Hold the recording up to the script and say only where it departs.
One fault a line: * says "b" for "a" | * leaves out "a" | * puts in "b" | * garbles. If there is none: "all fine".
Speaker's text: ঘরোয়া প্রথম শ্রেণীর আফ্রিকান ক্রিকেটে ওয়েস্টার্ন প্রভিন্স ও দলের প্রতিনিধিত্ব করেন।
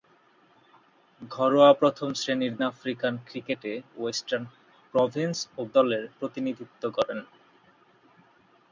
all fine